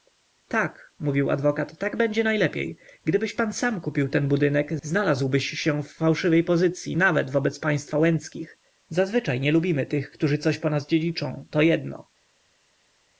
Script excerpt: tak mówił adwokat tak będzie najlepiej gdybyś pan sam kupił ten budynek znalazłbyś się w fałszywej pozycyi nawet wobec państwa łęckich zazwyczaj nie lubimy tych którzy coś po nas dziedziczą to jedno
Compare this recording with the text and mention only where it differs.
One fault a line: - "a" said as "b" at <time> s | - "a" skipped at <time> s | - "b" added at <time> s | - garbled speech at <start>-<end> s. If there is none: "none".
none